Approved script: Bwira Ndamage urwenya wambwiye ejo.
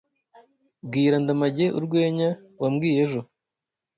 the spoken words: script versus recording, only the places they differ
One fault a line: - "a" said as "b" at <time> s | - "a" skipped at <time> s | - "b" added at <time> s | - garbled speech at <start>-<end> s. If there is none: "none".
none